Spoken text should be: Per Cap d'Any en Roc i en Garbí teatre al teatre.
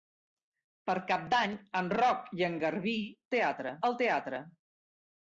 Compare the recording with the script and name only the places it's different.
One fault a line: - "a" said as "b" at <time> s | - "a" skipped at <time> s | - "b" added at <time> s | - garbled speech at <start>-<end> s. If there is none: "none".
none